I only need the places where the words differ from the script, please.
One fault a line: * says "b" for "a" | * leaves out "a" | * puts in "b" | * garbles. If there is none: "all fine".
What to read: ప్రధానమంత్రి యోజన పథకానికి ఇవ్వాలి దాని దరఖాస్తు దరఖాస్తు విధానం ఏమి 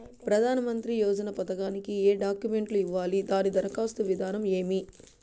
* puts in "ఏ డాక్యుమెంట్లు"
* leaves out "దరఖాస్తు"